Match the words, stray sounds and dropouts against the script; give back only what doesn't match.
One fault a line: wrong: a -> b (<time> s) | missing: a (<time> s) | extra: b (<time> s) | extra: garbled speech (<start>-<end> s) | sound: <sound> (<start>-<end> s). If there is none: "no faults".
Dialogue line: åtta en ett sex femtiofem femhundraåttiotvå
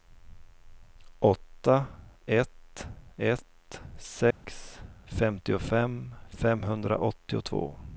wrong: en -> ett (2.2 s)
sound: dropout (4.3-4.4 s)